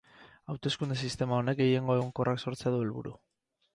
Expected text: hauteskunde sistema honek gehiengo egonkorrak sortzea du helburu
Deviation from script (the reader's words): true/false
false